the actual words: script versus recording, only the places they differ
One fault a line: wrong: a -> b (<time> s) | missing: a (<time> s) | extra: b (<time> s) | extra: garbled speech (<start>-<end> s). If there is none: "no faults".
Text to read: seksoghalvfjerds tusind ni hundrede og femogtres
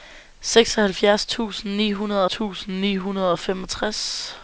extra: tusind ni hundrede (2.3 s)